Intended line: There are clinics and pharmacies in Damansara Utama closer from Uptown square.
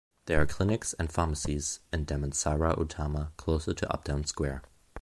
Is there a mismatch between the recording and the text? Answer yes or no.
yes